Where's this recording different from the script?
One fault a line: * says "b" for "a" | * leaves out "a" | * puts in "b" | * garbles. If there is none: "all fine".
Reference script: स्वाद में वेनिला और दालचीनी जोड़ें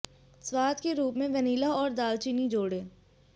* puts in "के रूप"